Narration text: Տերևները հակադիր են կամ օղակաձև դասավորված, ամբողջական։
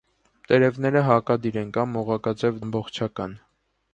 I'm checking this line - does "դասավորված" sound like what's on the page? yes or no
no